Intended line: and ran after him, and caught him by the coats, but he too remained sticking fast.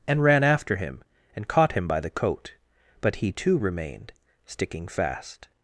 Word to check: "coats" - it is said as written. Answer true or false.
false